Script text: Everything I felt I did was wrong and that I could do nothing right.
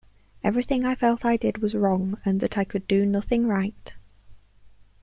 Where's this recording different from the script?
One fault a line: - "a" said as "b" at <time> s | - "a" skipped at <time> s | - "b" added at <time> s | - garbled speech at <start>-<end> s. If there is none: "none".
none